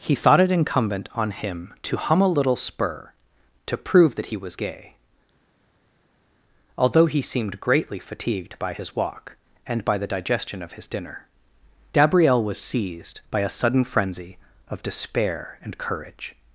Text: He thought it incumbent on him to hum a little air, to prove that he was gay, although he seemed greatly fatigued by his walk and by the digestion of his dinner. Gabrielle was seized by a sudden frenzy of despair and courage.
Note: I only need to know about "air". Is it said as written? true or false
false